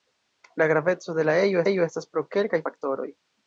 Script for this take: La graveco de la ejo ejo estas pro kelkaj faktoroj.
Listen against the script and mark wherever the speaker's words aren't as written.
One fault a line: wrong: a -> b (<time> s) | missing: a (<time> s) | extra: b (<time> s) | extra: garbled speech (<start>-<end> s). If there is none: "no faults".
no faults